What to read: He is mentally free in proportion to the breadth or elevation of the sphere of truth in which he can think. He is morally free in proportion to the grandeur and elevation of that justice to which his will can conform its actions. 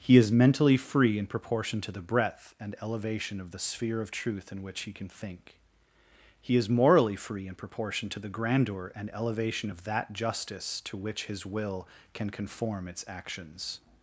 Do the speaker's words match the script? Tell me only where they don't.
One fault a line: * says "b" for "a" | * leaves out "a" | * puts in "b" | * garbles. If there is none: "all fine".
* says "and" for "or"